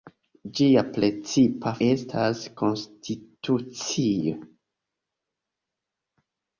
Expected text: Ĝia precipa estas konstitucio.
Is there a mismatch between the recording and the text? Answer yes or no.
no